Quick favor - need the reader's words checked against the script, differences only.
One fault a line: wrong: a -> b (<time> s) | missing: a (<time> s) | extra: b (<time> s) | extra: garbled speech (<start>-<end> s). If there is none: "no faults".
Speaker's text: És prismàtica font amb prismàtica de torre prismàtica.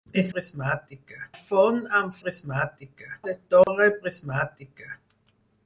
no faults